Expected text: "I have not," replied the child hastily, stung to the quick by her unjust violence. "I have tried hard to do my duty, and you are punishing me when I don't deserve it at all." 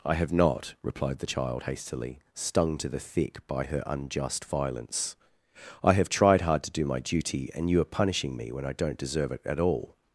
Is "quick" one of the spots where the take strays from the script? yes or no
yes